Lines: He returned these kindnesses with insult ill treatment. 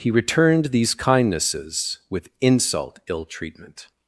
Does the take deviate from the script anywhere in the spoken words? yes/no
no